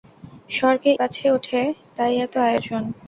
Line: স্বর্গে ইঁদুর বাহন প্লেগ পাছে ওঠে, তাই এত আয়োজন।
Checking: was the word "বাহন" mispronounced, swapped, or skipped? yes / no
yes